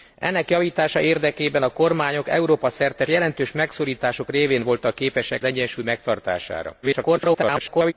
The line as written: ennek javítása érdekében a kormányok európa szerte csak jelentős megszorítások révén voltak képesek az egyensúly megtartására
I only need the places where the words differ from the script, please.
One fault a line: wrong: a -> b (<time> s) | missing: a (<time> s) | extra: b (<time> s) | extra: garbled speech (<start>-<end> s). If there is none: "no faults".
missing: csak (3.0 s)
missing: az (5.4 s)
extra: garbled speech (6.8-7.9 s)